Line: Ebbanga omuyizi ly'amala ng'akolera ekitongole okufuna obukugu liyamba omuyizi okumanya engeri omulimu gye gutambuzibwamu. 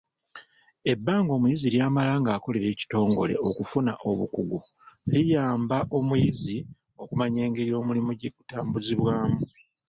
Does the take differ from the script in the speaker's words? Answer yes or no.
no